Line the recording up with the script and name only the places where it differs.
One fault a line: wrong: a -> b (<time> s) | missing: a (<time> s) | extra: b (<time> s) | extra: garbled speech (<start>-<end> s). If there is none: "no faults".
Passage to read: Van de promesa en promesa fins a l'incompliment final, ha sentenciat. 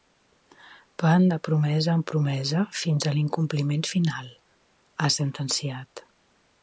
no faults